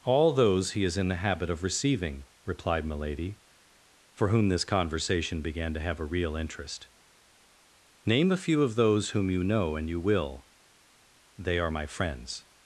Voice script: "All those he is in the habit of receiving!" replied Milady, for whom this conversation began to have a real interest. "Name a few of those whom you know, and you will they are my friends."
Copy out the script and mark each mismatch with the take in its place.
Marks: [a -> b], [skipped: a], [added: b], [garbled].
"All those he is in the habit of receiving!" replied Milady, for whom this conversation began to have a real interest. "Name a few of those whom you know, and you will they are my friends."